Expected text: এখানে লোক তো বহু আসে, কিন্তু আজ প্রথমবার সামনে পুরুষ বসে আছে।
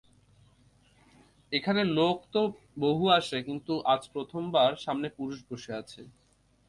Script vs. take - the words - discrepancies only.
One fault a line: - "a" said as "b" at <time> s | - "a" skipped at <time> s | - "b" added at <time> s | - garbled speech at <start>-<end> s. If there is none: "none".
none